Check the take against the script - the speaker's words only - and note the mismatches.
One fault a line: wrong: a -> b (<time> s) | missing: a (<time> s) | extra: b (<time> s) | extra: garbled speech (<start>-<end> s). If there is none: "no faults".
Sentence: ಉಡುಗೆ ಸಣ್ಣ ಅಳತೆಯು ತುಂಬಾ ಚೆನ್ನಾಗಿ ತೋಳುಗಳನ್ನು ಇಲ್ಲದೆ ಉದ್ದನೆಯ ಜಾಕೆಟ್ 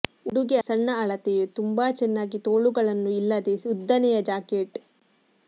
no faults